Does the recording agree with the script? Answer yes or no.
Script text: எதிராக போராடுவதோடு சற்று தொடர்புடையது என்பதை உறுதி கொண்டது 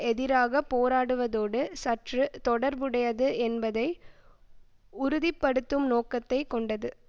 no